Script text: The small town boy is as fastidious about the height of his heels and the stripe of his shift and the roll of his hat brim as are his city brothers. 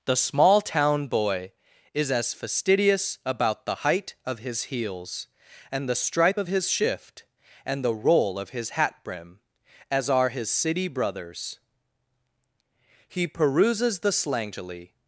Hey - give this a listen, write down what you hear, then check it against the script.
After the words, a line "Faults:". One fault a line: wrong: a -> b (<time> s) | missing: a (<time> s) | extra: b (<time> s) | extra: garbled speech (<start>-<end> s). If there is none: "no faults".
The small town boy is as fastidious about the height of his heels and the stripe of his shift and the roll of his hat brim as are his city brothers. He peruses the slangily
Faults:
extra: He peruses the slangily (13.1 s)